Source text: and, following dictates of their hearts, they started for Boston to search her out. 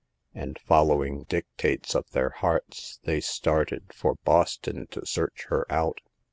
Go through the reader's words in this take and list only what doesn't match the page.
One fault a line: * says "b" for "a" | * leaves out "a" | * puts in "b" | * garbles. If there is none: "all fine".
all fine